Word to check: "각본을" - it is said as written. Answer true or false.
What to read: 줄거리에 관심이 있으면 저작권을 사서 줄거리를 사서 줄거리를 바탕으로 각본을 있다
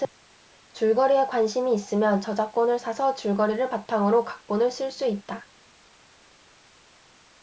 false